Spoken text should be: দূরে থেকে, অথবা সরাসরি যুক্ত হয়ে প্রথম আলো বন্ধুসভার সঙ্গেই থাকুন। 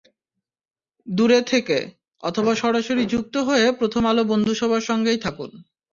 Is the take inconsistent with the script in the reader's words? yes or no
no